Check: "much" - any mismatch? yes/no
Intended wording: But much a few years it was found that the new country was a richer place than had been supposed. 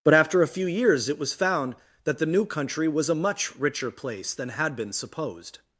yes